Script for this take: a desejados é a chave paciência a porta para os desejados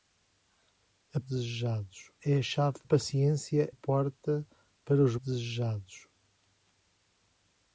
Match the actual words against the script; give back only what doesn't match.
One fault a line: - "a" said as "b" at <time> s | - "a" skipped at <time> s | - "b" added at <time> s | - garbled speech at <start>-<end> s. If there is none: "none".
none